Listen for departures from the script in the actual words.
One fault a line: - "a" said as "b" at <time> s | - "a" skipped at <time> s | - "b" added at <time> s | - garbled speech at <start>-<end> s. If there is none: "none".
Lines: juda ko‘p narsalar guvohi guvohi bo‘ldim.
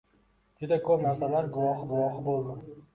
none